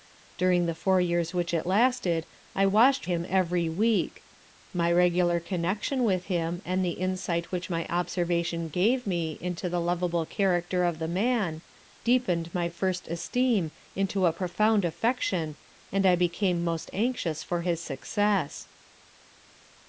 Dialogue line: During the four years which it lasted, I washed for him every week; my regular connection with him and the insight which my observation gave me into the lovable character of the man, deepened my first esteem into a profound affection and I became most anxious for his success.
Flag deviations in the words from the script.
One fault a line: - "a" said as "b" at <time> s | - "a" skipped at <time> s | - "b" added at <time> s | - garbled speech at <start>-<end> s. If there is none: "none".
- "for" skipped at 3.0 s